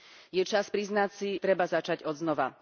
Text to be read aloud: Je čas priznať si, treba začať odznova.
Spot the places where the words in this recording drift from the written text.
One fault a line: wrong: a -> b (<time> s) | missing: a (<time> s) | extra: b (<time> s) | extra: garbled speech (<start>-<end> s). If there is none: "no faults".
no faults